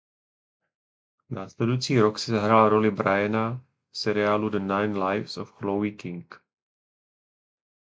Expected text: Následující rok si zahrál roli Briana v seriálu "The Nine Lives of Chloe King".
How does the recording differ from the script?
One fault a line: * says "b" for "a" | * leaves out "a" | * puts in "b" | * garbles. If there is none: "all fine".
all fine